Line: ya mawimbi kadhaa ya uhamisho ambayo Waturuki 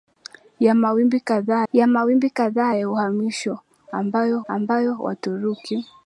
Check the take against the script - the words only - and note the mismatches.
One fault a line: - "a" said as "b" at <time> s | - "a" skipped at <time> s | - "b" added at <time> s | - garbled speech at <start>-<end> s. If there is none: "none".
- "mawimbi kadhaa ya" added at 1.9 s
- "ambayo" added at 4.5 s